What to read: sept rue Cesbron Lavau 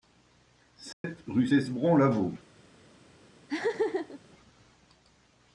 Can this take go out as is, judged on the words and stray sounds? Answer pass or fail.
fail